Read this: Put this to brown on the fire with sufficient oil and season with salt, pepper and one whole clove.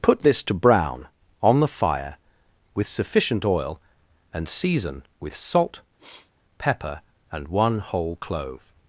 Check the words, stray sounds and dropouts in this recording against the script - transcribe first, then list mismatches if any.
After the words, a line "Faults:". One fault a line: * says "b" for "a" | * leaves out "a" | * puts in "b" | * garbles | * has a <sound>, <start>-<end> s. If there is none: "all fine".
Put this to brown on the fire with sufficient oil and season with salt, pepper and one whole clove.
Faults:
* has a sniff, 6.0-6.3 s